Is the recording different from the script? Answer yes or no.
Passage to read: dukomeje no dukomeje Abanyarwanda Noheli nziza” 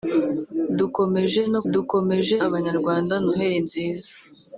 no